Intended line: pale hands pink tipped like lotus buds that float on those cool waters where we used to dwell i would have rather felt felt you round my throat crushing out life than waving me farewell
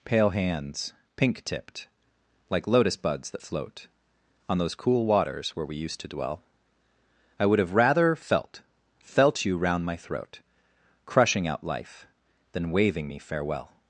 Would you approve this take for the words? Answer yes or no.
yes